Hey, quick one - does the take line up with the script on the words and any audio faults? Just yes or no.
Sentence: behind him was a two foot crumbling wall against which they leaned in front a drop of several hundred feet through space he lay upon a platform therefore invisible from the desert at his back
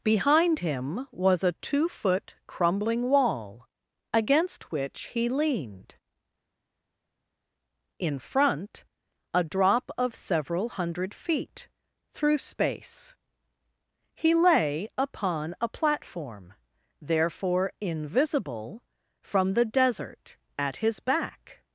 no